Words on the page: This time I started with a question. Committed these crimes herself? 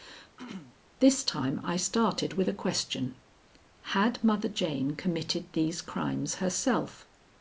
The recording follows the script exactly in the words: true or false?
false